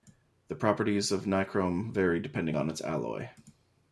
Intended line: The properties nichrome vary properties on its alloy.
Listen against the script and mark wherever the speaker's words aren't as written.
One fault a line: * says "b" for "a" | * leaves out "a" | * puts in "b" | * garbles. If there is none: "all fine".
* puts in "of"
* says "depending" for "properties"